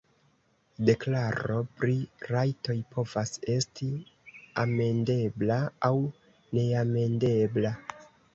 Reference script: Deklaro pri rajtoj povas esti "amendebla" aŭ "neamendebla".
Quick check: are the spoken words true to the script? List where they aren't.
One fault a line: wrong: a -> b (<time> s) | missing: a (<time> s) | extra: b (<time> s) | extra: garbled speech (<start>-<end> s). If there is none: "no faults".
no faults